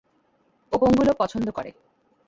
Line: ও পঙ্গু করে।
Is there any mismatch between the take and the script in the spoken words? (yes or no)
yes